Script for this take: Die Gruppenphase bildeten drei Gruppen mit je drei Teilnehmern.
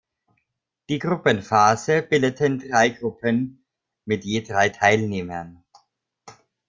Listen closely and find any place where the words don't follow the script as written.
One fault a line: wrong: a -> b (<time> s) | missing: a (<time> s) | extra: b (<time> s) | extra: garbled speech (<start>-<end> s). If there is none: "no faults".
no faults